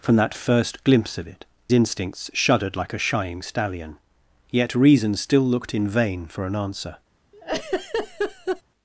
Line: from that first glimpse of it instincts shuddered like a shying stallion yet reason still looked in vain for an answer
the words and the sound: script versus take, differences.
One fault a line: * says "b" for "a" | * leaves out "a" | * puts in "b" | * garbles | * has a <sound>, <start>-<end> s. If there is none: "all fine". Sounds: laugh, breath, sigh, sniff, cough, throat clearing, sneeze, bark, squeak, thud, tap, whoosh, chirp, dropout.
* has a laugh, 7.3-8.6 s